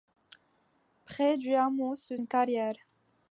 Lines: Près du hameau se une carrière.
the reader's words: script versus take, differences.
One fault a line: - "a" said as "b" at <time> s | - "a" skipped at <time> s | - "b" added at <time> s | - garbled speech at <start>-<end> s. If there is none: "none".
none